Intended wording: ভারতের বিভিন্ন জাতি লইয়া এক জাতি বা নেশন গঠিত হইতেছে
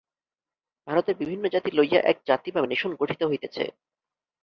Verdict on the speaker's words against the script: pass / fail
pass